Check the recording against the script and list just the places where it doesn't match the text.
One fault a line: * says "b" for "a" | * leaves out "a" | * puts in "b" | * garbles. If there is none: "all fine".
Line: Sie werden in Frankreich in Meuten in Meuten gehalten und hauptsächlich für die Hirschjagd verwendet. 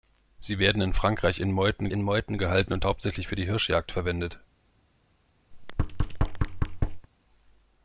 all fine